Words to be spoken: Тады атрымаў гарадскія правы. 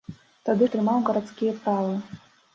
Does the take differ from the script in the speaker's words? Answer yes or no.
no